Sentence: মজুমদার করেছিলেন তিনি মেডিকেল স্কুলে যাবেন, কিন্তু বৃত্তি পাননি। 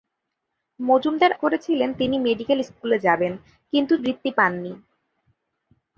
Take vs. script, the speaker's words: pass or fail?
pass